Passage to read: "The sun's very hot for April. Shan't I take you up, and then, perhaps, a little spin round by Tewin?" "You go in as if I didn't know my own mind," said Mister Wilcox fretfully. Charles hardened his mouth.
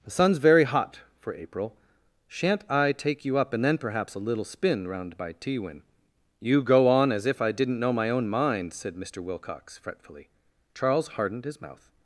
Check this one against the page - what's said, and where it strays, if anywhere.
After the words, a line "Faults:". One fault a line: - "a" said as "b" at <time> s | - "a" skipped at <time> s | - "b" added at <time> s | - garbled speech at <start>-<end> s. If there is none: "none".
"The sun's very hot for April. Shan't I take you up, and then, perhaps, a little spin round by Tewin?" "You go on as if I didn't know my own mind," said Mister Wilcox fretfully. Charles hardened his mouth.
Faults:
- "in" said as "on" at 6.9 s